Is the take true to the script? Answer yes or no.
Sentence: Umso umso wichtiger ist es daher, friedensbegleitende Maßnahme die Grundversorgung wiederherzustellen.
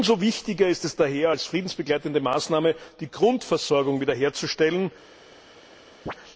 no